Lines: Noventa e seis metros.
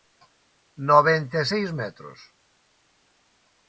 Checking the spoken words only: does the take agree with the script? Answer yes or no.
yes